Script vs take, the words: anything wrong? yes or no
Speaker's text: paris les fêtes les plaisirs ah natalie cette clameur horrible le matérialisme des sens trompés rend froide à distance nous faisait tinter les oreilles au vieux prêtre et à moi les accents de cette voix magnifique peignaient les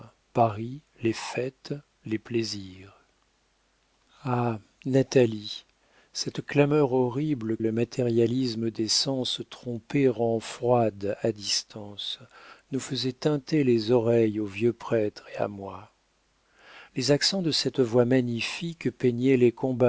no